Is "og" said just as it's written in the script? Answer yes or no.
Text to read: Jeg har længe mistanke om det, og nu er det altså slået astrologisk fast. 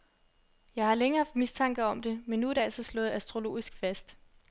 no